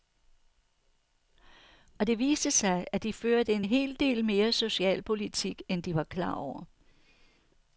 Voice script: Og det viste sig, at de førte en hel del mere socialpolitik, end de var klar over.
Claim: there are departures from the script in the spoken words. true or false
false